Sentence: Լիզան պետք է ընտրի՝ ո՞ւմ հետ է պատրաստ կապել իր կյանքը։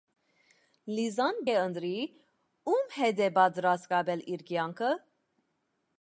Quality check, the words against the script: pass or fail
fail